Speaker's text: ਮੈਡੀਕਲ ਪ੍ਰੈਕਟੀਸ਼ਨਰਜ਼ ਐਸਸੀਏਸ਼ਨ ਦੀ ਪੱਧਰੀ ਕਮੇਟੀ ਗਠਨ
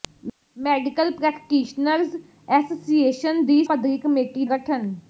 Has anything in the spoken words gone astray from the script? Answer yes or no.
no